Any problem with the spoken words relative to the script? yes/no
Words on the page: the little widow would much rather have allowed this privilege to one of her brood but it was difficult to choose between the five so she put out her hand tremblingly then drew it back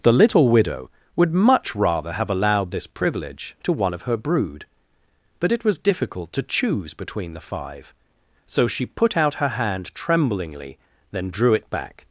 no